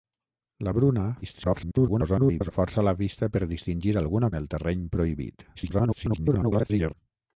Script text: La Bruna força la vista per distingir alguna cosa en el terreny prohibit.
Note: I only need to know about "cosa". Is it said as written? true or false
false